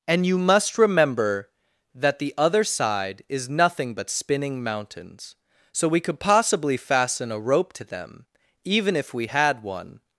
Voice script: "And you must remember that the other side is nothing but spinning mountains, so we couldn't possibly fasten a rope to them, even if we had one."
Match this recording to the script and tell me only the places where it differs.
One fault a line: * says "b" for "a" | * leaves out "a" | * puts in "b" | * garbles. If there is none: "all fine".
* says "could" for "couldn't"